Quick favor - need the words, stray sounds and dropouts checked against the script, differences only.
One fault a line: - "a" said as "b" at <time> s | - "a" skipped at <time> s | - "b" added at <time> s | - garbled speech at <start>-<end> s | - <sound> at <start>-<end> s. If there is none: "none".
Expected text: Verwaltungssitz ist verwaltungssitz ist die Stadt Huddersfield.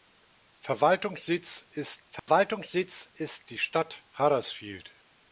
- dropout at 2.2-2.3 s